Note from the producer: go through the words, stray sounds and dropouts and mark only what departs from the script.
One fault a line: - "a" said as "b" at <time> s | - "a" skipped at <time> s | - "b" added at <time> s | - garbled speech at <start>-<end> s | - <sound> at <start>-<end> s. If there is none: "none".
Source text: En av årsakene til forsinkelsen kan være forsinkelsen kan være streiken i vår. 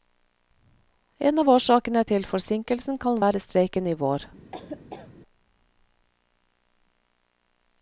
- "forsinkelsen kan være" skipped at 3.4 s
- laugh at 4.5-5.1 s